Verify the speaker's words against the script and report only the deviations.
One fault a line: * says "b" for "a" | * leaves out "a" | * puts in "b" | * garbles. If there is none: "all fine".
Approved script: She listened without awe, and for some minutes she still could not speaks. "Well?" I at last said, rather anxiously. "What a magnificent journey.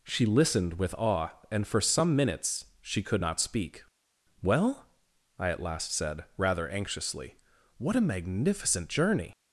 * says "with" for "without"
* leaves out "still"
* says "speak" for "speaks"